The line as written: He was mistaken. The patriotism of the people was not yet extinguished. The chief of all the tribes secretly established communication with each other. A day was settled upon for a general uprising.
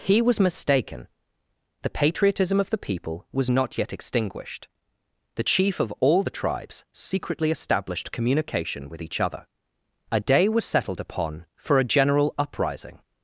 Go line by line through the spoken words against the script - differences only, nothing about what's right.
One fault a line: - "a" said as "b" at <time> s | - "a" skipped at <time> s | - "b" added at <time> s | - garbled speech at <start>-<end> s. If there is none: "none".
none